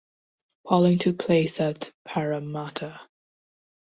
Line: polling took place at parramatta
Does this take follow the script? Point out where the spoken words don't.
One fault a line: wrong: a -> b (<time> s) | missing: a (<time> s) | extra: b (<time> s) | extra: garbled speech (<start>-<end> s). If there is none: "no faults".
no faults